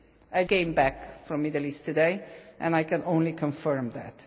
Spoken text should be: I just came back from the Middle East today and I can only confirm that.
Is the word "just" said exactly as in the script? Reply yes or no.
no